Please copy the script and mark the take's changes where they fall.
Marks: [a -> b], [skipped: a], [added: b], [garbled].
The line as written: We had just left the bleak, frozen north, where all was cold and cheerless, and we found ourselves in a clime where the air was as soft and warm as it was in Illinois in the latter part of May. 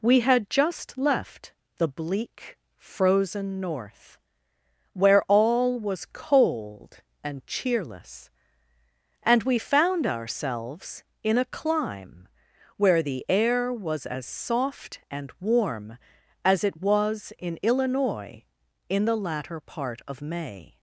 We had just left the bleak, frozen north, where all was cold and cheerless, and we found ourselves in a clime where the air was as soft and warm as it was in Illinois in the latter part of May.